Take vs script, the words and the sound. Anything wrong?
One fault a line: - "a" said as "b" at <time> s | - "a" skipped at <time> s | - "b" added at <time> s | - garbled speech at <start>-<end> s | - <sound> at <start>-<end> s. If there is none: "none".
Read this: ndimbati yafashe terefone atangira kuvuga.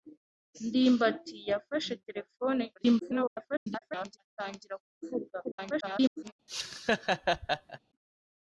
- garbled speech at 2.8-4.2 s
- garbled speech at 5.4-6.3 s
- laugh at 6.5-7.8 s